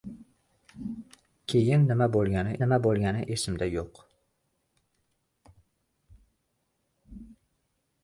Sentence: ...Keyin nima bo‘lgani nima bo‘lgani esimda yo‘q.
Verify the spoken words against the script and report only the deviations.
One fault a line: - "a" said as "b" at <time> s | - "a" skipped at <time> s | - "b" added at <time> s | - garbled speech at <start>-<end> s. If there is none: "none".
none